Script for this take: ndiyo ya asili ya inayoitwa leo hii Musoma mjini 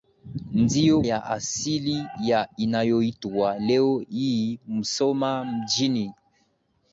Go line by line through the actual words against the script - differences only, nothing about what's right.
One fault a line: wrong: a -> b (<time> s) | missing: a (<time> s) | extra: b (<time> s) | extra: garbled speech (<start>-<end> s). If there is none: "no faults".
no faults